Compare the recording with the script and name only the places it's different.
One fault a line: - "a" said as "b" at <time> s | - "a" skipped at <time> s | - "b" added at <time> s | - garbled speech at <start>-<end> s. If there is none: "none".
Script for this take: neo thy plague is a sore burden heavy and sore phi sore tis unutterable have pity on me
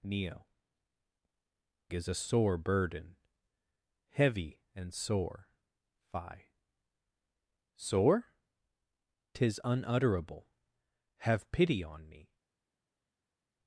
- "thy plague" skipped at 0.5 s